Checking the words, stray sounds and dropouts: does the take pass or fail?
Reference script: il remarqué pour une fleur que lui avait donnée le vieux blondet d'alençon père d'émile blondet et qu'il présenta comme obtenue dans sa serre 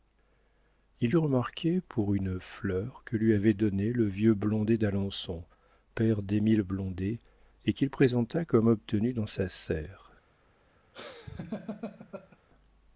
fail